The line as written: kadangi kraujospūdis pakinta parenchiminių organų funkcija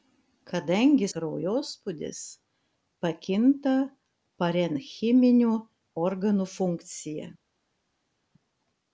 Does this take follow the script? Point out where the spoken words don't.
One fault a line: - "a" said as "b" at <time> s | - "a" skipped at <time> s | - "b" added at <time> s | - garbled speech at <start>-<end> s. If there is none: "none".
none